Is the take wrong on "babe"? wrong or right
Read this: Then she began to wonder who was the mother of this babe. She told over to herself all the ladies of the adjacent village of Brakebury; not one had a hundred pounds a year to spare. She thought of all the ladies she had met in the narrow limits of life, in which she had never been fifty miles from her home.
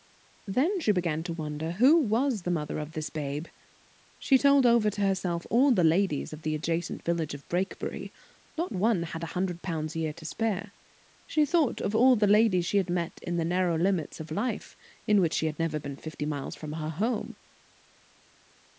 right